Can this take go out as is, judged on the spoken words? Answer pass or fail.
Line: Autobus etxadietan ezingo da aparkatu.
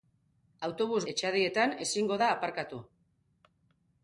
pass